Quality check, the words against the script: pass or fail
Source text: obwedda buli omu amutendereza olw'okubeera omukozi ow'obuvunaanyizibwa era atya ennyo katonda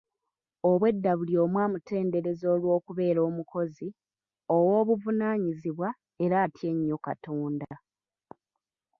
pass